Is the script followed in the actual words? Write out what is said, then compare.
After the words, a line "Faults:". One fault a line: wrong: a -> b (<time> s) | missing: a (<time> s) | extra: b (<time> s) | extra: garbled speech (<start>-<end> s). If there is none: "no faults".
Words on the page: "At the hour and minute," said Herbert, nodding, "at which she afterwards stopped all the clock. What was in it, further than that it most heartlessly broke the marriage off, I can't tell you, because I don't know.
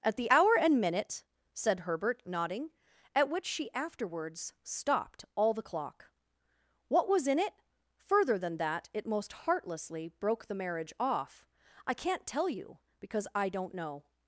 "At the hour and minute," said Herbert, nodding, "at which she afterwards stopped all the clock. What was in it, further than that it most heartlessly broke the marriage off, I can't tell you, because I don't know.
Faults:
no faults